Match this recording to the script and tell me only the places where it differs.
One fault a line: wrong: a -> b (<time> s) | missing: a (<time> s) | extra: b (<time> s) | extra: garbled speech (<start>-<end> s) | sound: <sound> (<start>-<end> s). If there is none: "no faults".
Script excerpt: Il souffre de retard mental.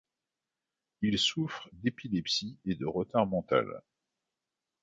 extra: d'épilepsie et (1.7 s)